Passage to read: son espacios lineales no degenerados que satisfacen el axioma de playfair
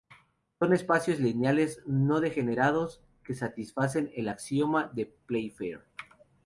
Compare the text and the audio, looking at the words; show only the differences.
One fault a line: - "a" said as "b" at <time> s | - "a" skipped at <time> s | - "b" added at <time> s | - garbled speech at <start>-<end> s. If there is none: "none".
none